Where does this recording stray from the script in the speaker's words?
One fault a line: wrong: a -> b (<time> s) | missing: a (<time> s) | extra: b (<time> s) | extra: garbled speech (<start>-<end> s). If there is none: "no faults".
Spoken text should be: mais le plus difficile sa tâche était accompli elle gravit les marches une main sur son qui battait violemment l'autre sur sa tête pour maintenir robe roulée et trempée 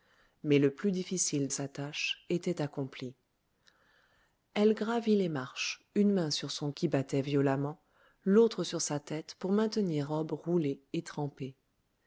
no faults